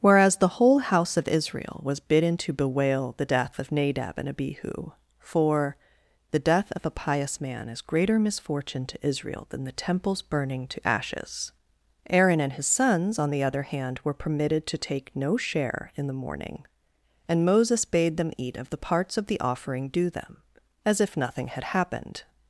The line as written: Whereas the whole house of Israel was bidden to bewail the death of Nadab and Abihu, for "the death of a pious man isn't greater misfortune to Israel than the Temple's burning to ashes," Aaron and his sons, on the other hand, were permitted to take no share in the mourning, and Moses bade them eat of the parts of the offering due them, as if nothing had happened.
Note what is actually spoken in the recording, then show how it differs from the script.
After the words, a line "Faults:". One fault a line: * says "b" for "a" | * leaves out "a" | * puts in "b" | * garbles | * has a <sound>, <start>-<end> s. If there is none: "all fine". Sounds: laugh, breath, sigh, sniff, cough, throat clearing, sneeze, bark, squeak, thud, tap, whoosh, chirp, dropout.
Whereas the whole house of Israel was bidden to bewail the death of Nadab and Abihu, for "the death of a pious man is greater misfortune to Israel than the Temple's burning to ashes," Aaron and his sons, on the other hand, were permitted to take no share in the mourning, and Moses bade them eat of the parts of the offering due them, as if nothing had happened.
Faults:
* says "is" for "isn't"